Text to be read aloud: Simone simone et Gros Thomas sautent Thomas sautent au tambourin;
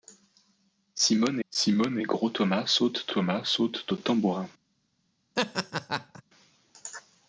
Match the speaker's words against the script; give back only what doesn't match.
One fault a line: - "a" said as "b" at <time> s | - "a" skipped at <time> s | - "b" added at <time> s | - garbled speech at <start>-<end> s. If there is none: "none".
none